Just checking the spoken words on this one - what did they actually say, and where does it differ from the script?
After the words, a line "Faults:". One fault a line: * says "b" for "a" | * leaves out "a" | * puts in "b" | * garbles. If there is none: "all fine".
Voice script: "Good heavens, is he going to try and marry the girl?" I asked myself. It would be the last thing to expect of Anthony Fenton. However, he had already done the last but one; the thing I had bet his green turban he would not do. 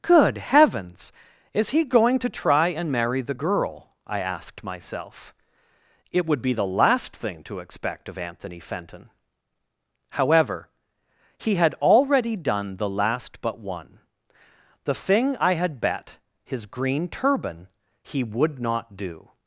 "Good heavens, is he going to try and marry the girl?" I asked myself. It would be the last thing to expect of Anthony Fenton. However, he had already done the last but one; the thing I had bet his green turban he would not do.
Faults:
all fine